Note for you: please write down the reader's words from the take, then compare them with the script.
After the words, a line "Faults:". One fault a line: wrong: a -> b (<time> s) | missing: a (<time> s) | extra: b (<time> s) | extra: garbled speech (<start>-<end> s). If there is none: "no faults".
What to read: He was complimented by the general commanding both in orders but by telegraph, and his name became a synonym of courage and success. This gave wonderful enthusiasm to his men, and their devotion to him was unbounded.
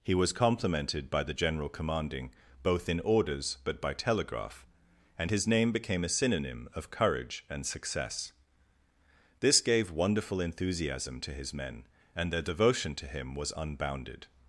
He was complimented by the general commanding both in orders but by telegraph, and his name became a synonym of courage and success. This gave wonderful enthusiasm to his men, and their devotion to him was unbounded.
Faults:
no faults